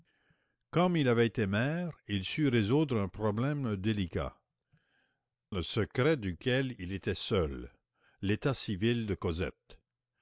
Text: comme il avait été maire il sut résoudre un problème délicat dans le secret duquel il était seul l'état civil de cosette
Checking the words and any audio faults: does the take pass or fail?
fail